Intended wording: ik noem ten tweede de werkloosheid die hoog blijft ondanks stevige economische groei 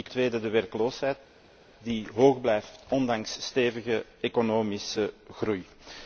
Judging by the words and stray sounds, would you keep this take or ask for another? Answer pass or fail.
fail